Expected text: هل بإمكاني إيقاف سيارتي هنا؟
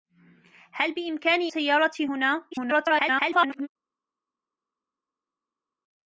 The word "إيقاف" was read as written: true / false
false